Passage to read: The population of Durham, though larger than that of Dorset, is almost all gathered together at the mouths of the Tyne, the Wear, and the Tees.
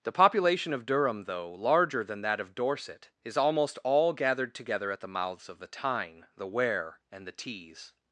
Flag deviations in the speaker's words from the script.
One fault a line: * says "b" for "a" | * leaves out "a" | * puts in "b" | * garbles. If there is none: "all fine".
all fine